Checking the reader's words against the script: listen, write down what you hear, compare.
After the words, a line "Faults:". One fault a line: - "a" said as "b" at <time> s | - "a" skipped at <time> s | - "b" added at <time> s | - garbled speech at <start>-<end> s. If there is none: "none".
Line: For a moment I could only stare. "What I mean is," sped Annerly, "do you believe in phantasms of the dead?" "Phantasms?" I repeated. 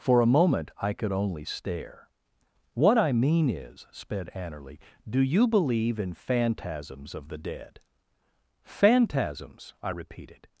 For a moment I could only stare. "What I mean is," sped Annerly, "do you believe in phantasms of the dead?" "Phantasms?" I repeated.
Faults:
none